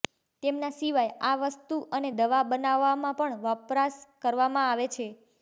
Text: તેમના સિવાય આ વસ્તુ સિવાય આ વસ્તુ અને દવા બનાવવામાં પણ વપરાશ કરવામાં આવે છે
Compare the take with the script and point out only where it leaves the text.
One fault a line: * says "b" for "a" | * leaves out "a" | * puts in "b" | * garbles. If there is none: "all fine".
* leaves out "સિવાય આ વસ્તુ"